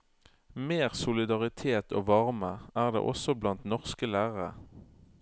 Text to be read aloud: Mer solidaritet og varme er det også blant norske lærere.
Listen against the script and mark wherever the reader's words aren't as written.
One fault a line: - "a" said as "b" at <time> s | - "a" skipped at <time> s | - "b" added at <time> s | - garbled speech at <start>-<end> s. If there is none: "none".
none